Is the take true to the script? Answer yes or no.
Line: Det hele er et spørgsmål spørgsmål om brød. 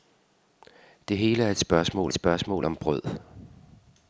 yes